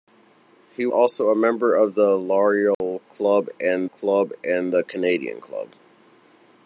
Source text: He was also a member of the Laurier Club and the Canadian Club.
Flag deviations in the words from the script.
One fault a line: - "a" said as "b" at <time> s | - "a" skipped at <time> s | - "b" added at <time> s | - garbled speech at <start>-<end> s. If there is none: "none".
- "was" skipped at 0.9 s
- "Club and" added at 3.9 s